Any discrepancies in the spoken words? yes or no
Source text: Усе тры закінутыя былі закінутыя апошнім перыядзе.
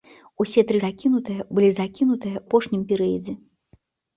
no